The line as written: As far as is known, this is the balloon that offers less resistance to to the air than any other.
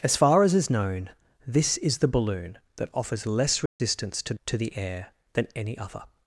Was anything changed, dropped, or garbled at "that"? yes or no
no